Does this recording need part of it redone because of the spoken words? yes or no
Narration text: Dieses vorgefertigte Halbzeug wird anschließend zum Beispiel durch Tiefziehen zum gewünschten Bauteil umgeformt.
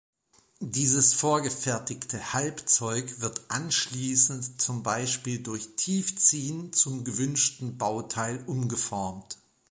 no